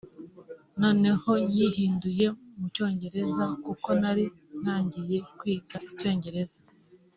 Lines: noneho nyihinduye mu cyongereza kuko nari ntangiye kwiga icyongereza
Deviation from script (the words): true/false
false